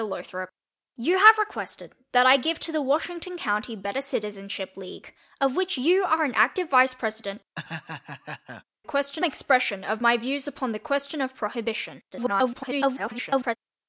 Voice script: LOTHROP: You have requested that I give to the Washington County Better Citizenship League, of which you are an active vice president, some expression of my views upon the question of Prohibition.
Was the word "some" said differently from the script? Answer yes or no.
yes